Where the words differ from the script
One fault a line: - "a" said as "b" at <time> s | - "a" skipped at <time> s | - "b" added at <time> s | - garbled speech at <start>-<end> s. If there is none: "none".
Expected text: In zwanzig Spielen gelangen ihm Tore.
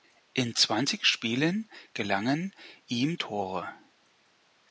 none